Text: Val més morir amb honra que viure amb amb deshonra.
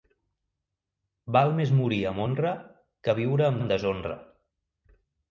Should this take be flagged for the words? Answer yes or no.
no